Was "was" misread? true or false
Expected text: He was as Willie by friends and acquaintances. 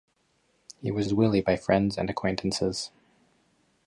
false